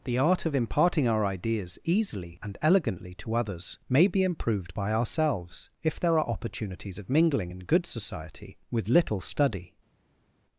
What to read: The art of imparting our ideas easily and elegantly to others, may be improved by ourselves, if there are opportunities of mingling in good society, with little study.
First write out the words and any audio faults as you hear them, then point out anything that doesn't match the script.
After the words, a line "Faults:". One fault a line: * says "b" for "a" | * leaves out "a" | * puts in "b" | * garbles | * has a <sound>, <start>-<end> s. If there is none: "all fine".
The art of imparting our ideas easily and elegantly to others, may be improved by ourselves, if there are opportunities of mingling in good society, with little study.
Faults:
all fine